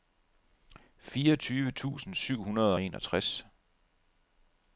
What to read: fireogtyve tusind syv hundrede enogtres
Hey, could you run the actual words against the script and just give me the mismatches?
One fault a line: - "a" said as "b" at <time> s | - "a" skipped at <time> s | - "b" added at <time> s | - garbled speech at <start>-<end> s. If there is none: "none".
- "og" added at 2.7 s